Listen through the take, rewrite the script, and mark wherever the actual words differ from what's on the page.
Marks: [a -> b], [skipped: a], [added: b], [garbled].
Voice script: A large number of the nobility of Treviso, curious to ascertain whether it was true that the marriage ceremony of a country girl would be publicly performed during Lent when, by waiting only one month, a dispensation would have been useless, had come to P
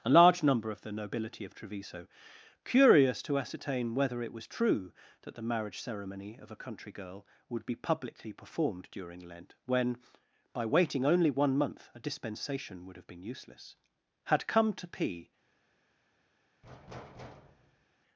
A large number of the nobility of Treviso, curious to ascertain whether it was true that the marriage ceremony of a country girl would be publicly performed during Lent when, by waiting only one month, a dispensation would have been useless, had come to P